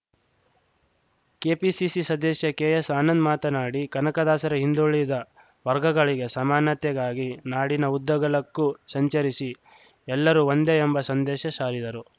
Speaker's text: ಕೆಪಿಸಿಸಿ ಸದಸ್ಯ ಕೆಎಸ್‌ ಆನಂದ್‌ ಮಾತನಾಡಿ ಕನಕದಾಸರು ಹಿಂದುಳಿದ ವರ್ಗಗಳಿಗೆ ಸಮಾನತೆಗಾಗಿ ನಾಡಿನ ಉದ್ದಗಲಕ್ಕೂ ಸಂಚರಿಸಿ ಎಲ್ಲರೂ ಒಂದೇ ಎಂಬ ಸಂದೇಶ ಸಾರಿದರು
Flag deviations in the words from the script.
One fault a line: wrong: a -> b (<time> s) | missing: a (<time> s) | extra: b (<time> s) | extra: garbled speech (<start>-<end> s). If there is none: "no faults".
no faults